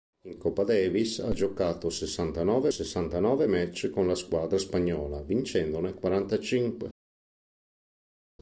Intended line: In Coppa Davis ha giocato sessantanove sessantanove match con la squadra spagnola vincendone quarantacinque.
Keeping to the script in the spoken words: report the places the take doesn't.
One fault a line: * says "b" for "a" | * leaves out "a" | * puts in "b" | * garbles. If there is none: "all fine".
all fine